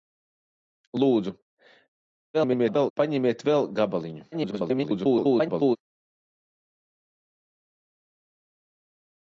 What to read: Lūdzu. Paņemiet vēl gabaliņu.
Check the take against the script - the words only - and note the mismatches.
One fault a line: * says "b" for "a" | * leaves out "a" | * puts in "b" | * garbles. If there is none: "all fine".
* garbles
* garbles